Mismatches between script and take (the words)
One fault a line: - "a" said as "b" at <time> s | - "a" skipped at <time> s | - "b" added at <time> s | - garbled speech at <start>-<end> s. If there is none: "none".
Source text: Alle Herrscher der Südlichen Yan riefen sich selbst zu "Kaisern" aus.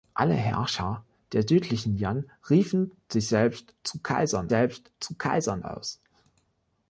- "selbst zu Kaisern" added at 4.5 s